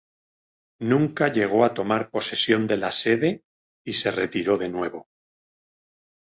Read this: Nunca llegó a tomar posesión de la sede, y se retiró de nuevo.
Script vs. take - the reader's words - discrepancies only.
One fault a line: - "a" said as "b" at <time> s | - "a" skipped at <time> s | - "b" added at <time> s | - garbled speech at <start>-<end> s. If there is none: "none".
none